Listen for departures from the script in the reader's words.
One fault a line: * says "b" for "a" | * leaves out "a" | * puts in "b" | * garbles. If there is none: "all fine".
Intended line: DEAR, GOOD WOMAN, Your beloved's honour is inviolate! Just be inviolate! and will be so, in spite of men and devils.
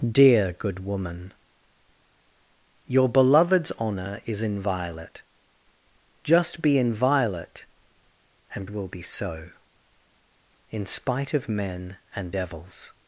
all fine